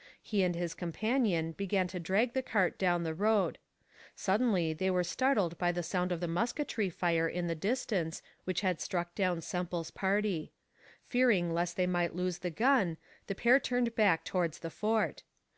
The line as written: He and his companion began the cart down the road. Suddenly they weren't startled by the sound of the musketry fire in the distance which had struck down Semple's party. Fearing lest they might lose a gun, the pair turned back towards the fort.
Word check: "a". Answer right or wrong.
wrong